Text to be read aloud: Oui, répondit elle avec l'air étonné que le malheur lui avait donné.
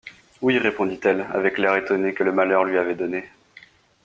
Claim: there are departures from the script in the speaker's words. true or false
false